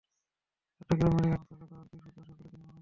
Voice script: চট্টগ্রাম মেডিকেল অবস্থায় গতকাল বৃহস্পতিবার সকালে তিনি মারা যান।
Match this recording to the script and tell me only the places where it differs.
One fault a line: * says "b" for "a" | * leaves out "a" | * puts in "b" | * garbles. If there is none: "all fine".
all fine